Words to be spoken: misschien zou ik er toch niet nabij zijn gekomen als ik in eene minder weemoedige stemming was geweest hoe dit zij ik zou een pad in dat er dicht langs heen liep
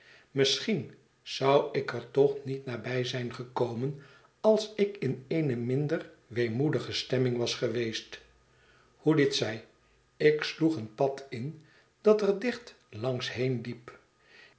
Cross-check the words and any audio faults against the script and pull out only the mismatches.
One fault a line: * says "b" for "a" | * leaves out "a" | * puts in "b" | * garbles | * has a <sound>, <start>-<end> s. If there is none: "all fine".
* says "sloeg" for "zou"